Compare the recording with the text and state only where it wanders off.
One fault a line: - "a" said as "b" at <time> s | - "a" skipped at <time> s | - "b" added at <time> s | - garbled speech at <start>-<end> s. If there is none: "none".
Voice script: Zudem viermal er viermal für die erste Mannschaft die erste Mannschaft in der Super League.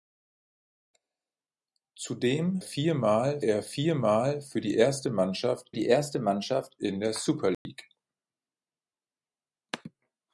none